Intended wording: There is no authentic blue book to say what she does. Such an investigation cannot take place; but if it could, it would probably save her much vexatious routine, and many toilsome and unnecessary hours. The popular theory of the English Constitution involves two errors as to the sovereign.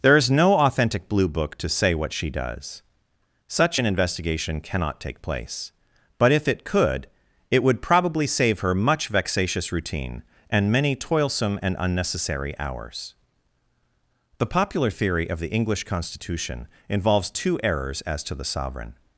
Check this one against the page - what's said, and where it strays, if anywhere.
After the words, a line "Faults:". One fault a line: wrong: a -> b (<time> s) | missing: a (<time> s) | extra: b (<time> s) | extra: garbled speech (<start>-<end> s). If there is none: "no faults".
There is no authentic blue book to say what she does. Such an investigation cannot take place; but if it could, it would probably save her much vexatious routine, and many toilsome and unnecessary hours. The popular theory of the English Constitution involves two errors as to the sovereign.
Faults:
no faults